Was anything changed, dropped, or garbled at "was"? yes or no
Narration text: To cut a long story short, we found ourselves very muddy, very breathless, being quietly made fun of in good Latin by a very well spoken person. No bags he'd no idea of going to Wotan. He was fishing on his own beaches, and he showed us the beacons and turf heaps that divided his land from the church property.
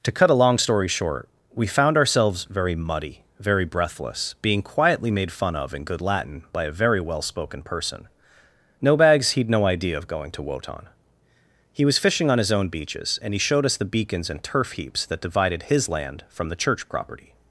no